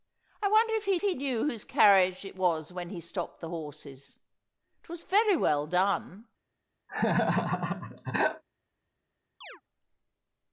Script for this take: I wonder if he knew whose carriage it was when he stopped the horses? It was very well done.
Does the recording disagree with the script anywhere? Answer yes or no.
yes